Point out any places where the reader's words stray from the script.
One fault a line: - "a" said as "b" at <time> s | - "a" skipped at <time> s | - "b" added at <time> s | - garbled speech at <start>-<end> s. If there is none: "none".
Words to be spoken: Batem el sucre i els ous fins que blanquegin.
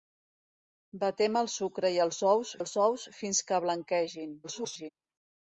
- "els ous" added at 2.6 s
- garbled speech at 4.4-4.9 s